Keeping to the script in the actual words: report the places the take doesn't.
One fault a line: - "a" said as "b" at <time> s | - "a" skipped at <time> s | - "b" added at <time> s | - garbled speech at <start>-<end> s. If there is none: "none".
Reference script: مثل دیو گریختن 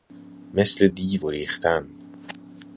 none